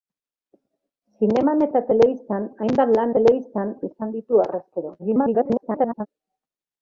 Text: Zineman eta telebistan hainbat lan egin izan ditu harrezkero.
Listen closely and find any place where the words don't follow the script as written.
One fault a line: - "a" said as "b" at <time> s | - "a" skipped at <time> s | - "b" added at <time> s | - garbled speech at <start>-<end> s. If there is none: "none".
- "egin" said as "telebistan" at 3.1 s
- garbled speech at 5.0-6.1 s